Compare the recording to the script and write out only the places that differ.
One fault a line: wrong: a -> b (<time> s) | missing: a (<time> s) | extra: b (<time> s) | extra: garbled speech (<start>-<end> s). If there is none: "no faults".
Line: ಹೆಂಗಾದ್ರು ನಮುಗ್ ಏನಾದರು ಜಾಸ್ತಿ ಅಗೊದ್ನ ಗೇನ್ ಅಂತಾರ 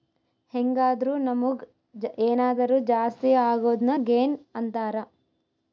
no faults